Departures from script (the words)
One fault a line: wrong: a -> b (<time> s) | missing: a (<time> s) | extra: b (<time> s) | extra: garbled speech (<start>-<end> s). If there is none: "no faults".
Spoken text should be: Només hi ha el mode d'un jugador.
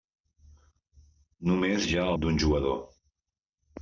missing: el mode (2.1 s)